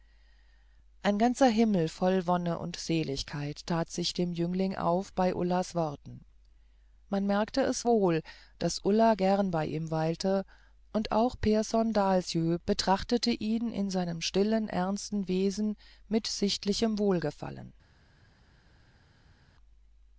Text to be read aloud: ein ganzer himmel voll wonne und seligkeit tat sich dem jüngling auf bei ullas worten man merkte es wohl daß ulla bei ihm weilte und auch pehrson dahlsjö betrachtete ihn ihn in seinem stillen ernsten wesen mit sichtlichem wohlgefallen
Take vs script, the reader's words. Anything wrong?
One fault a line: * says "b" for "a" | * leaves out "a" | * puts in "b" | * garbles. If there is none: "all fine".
* puts in "gern"
* leaves out "ihn"